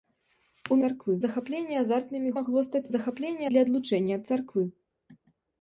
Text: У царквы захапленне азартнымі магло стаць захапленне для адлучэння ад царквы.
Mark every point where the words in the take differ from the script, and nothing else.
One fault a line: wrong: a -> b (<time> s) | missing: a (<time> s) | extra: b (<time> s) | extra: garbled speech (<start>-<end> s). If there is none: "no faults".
no faults